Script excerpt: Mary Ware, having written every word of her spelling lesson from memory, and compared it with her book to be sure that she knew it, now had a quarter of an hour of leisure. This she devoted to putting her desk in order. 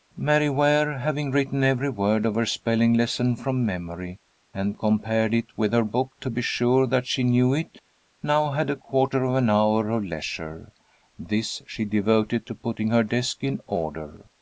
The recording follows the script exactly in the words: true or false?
true